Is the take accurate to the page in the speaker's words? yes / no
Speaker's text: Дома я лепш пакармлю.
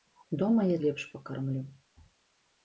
yes